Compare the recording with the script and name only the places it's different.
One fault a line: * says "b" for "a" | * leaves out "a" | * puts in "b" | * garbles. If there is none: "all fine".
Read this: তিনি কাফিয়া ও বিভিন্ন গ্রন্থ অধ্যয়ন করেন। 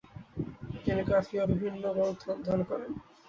all fine